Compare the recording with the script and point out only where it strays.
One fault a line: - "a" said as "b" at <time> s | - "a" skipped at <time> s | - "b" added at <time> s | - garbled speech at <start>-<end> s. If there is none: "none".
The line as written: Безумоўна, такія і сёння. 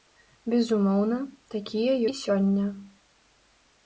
none